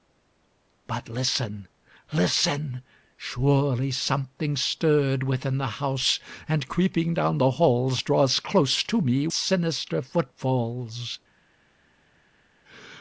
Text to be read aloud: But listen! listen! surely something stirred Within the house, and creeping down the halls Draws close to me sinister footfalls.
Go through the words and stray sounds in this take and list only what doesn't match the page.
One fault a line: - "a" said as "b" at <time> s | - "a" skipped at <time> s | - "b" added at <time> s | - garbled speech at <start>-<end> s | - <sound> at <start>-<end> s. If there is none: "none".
none